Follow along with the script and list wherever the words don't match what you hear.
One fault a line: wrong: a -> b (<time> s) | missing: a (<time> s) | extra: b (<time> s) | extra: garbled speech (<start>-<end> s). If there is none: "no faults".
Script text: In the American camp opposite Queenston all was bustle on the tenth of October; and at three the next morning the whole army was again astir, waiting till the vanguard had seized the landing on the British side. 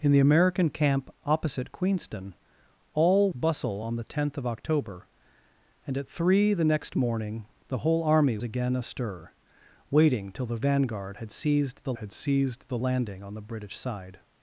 missing: was (3.3 s)
missing: was (8.4 s)
extra: had seized the (12.0 s)